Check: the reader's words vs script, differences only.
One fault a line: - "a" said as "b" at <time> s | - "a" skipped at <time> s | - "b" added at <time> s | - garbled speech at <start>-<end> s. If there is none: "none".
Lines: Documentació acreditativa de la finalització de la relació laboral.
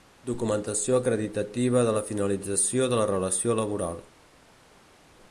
none